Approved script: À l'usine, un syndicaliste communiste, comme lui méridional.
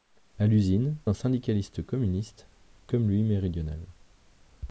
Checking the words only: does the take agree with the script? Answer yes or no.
yes